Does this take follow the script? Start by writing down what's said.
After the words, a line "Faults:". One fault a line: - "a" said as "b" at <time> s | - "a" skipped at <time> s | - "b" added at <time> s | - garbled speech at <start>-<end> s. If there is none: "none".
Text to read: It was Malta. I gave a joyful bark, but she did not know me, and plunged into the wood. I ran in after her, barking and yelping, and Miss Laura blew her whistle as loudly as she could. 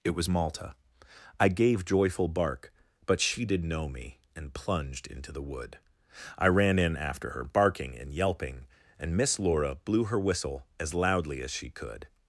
It was Malta. I gave joyful bark, but she did know me, and plunged into the wood. I ran in after her, barking and yelping, and Miss Laura blew her whistle as loudly as she could.
Faults:
- "a" skipped at 1.8 s
- "not" skipped at 3.6 s